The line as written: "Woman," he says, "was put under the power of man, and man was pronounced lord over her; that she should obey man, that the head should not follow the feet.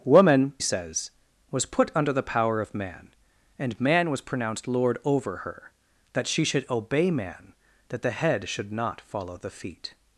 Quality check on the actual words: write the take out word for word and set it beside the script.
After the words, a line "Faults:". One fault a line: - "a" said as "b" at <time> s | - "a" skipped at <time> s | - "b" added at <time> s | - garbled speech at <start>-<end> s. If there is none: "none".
"Woman," says, "was put under the power of man, and man was pronounced lord over her; that she should obey man, that the head should not follow the feet.
Faults:
- "he" skipped at 0.5 s